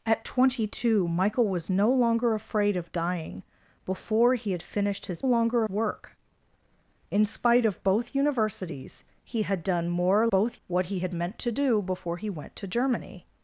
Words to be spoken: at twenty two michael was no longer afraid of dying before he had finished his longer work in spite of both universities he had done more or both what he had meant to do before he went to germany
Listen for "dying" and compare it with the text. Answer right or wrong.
right